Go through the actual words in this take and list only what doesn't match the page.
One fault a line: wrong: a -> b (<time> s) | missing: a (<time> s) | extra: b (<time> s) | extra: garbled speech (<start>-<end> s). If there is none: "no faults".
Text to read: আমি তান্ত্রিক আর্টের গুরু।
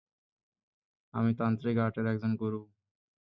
extra: একজন (2.1 s)